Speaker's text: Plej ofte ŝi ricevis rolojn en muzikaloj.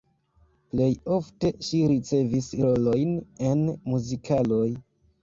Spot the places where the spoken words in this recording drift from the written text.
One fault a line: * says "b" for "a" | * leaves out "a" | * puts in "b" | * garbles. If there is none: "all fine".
all fine